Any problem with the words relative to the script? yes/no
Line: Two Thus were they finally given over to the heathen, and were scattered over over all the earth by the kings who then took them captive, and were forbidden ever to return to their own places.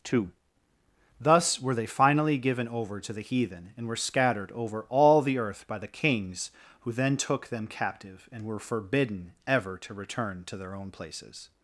yes